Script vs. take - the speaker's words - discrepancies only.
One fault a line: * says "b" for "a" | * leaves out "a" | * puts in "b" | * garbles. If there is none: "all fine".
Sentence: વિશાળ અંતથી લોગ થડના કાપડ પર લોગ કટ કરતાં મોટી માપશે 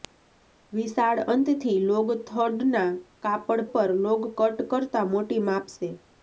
all fine